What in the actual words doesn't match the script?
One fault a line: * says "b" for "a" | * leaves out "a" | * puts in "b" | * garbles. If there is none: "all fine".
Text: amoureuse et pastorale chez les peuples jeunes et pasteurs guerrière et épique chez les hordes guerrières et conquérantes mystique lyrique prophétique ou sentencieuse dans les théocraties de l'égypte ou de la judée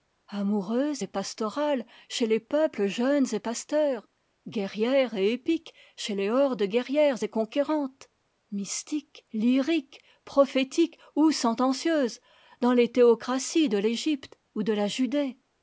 all fine